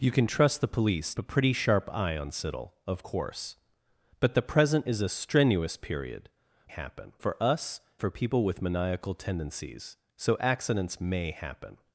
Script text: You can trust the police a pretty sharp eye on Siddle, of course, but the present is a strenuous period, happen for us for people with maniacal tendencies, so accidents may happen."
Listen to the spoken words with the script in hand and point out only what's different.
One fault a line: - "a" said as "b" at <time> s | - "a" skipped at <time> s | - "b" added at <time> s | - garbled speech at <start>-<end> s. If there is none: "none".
none